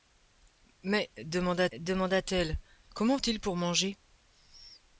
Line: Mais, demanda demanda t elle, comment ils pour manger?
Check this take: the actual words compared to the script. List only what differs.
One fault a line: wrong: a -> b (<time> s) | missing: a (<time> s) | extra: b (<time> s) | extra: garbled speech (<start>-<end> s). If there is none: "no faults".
no faults